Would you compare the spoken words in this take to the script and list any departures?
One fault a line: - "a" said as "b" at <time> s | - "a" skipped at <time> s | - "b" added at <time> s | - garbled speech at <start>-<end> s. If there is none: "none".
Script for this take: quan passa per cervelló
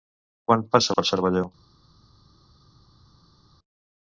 none